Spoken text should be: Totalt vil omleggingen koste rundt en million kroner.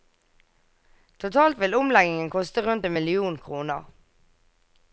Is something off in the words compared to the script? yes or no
no